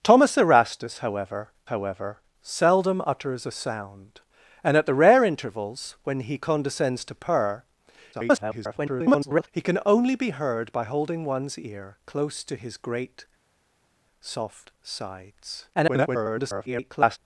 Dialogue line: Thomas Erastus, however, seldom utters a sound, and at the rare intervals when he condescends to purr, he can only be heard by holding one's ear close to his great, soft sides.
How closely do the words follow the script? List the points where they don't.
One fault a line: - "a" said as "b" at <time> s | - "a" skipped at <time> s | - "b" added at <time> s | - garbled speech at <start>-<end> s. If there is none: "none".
- "however" added at 1.7 s
- garbled speech at 8.1-9.5 s
- garbled speech at 15.7-17.2 s